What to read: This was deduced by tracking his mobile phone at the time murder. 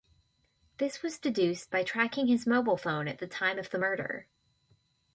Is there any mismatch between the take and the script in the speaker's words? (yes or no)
yes